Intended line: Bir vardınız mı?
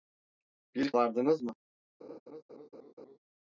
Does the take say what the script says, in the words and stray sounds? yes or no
no